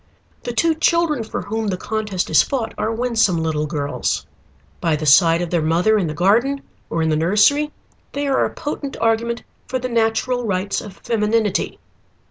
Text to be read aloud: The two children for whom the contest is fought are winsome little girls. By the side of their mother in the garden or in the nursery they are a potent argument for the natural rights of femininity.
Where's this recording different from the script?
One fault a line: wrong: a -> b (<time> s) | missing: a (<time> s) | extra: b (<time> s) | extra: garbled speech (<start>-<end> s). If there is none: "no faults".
no faults